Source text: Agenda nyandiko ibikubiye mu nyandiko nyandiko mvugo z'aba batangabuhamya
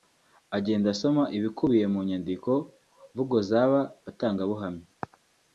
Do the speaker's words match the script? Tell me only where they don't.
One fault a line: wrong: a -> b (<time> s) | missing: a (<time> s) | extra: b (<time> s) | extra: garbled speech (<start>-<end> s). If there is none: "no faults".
wrong: nyandiko -> asoma (0.9 s)
missing: nyandiko (2.5 s)